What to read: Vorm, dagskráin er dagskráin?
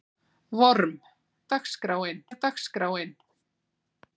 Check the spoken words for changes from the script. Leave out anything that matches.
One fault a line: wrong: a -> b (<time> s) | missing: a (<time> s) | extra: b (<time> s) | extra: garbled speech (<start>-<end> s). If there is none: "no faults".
no faults